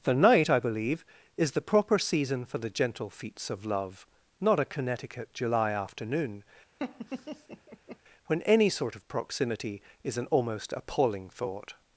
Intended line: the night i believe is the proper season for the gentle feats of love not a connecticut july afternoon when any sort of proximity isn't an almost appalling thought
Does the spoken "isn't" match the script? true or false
false